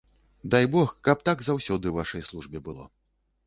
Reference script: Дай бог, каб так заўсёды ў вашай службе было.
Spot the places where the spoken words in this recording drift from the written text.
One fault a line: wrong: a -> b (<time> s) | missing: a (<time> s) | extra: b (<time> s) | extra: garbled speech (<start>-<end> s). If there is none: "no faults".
no faults